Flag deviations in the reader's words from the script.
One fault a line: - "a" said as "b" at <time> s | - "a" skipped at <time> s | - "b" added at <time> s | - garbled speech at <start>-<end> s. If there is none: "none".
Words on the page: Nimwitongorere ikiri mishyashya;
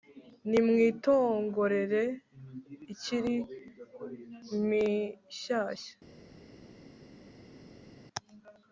none